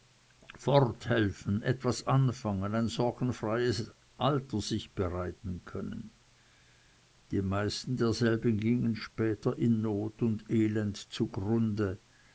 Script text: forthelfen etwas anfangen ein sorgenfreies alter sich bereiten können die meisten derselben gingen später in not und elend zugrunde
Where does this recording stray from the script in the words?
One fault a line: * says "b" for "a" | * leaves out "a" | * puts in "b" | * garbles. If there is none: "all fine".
all fine